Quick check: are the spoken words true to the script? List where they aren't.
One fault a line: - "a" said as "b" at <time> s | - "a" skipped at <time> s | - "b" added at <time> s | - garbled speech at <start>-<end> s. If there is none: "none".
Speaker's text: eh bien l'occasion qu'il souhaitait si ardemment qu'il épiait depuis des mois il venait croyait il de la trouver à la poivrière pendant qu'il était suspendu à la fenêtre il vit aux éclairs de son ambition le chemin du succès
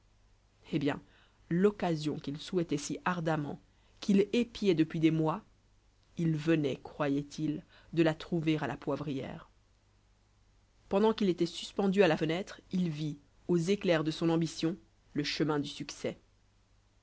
none